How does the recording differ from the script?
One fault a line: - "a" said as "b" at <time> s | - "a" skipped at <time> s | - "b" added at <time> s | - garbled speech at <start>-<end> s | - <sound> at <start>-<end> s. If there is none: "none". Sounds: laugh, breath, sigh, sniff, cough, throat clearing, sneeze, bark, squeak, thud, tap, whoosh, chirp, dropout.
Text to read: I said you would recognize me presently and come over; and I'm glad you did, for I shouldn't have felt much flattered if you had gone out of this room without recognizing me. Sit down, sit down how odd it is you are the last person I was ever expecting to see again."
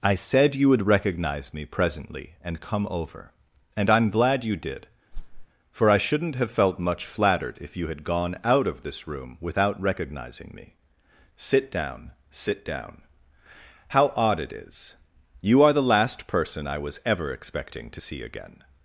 - whoosh at 5.1-5.5 s